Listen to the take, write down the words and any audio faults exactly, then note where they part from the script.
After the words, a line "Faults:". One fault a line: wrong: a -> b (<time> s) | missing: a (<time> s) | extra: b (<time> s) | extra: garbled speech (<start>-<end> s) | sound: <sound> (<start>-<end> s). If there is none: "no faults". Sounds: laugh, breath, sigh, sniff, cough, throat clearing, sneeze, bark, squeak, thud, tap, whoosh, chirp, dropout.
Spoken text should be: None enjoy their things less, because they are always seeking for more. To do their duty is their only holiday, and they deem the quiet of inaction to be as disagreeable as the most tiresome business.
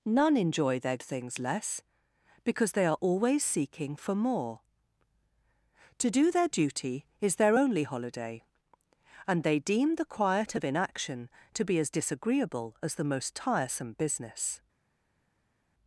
None enjoy their things less, because they are always seeking for more. To do their duty is their only holiday, and they deem the quiet of inaction to be as disagreeable as the most tiresome business.
Faults:
no faults